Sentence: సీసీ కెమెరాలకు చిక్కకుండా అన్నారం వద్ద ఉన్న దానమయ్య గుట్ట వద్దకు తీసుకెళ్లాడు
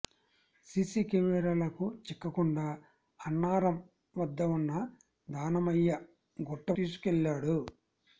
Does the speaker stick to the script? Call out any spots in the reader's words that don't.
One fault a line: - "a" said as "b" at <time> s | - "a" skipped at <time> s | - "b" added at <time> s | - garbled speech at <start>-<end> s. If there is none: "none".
- "వద్దకు" skipped at 6.7 s